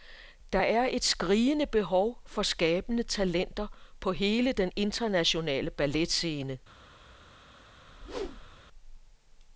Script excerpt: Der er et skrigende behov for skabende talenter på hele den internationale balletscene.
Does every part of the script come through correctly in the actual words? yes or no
yes